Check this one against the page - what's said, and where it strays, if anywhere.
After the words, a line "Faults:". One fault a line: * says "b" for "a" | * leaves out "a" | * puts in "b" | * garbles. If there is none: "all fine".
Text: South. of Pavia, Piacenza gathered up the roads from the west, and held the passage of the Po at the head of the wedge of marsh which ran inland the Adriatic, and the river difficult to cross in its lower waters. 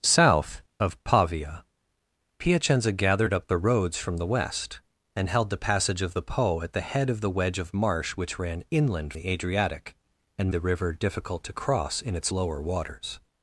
South. of Pavia, Piacenza gathered up the roads from the west, and held the passage of the Po at the head of the wedge of marsh which ran inland the Adriatic, and the river difficult to cross in its lower waters.
Faults:
all fine